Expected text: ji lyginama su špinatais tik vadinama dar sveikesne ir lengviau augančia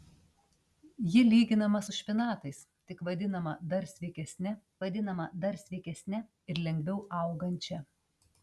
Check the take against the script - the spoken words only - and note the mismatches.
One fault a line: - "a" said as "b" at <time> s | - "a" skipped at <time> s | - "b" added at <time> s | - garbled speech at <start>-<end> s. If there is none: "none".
- "vadinama dar sveikesne" added at 4.8 s